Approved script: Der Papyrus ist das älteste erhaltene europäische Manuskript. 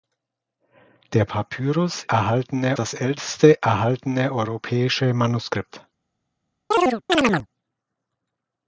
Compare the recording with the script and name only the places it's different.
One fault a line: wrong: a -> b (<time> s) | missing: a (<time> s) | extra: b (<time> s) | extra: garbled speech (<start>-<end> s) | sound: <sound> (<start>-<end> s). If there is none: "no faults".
wrong: ist -> erhaltene (2.1 s)
sound: chirp (6.7-7.5 s)